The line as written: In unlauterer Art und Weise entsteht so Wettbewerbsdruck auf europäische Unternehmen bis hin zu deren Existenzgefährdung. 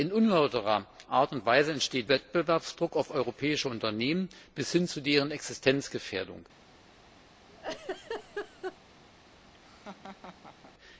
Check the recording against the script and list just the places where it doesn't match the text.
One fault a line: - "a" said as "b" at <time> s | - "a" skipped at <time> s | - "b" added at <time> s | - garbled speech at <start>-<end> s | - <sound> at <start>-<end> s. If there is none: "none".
- "so" skipped at 2.1 s
- laugh at 7.5-8.8 s
- laugh at 9.5-10.7 s